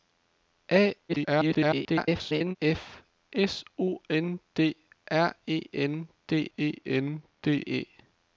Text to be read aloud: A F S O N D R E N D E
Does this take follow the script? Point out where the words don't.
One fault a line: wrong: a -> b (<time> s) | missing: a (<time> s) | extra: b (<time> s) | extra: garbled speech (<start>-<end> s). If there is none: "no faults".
extra: garbled speech (1.1-2.6 s)
extra: N D E (6.8 s)